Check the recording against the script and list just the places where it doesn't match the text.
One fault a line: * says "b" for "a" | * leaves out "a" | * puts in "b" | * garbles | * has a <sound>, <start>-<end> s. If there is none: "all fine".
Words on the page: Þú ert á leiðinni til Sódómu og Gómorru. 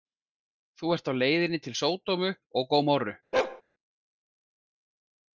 * has a bark, 3.3-3.6 s